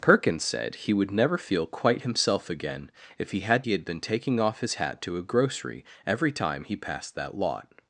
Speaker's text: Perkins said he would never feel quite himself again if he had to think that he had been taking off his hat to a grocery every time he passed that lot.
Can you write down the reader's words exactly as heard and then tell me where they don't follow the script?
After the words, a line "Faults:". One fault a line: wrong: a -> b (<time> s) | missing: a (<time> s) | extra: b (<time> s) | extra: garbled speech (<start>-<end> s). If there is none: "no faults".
Perkins said he would never feel quite himself again if he had he had been taking off his hat to a grocery every time he passed that lot.
Faults:
missing: to think that (3.6 s)